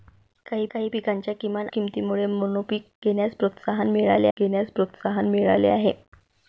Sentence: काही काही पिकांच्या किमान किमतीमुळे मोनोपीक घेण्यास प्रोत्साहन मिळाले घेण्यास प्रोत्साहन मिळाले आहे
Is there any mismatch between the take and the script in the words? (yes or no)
no